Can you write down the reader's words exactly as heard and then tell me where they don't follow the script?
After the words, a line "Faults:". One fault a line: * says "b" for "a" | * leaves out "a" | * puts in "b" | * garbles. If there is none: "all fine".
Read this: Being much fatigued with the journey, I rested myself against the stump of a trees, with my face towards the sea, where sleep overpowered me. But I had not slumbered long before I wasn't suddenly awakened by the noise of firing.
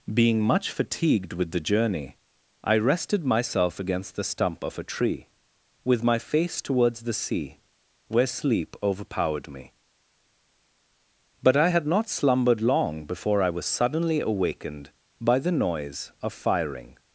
Being much fatigued with the journey, I rested myself against the stump of a tree, with my face towards the sea, where sleep overpowered me. But I had not slumbered long before I was suddenly awakened by the noise of firing.
Faults:
* says "tree" for "trees"
* says "was" for "wasn't"